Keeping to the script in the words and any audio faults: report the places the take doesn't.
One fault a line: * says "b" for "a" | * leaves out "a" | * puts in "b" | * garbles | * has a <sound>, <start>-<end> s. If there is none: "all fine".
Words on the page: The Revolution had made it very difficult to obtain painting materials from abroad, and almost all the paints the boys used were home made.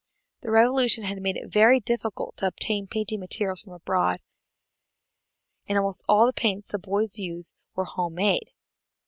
all fine